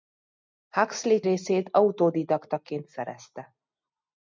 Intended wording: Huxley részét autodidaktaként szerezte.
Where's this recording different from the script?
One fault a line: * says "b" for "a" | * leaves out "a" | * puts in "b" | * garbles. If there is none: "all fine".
all fine